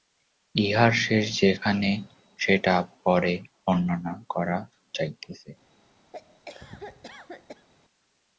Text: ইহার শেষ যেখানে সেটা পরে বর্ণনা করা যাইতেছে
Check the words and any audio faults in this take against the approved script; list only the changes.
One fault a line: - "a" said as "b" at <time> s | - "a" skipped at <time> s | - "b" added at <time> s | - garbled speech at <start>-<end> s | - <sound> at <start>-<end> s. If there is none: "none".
- cough at 6.1-7.7 s